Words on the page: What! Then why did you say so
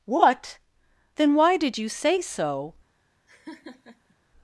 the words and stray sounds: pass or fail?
fail